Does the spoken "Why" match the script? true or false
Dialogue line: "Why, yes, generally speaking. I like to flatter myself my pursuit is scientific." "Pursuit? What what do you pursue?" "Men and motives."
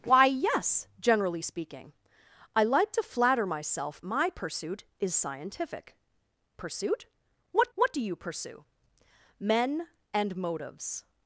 true